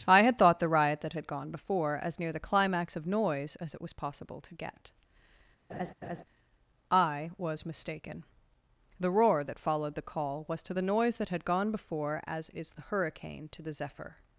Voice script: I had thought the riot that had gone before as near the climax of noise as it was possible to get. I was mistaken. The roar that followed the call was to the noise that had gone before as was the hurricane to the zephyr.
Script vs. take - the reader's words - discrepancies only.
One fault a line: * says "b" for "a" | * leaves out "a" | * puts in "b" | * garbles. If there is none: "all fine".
* says "is" for "was"